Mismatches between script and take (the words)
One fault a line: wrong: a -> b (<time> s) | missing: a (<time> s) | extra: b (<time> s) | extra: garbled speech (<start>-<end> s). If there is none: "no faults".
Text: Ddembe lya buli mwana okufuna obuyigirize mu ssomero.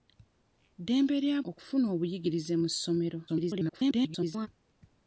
missing: buli mwana (1.4 s)
extra: garbled speech (3.3-4.5 s)